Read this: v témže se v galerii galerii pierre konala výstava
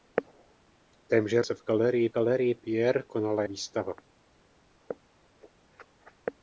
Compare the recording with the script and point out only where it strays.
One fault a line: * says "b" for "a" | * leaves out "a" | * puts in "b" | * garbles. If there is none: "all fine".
all fine